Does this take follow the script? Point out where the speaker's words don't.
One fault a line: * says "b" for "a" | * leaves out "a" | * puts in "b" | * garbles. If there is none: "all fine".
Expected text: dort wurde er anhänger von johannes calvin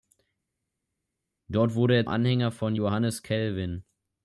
all fine